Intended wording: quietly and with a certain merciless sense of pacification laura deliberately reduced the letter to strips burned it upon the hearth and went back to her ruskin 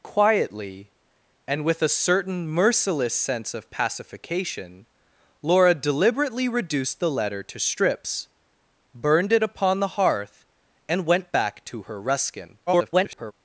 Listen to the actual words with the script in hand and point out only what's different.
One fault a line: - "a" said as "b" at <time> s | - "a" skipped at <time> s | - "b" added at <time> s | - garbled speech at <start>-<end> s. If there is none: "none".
- garbled speech at 12.7-13.3 s